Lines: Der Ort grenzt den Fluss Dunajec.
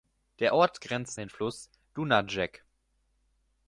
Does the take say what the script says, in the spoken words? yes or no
yes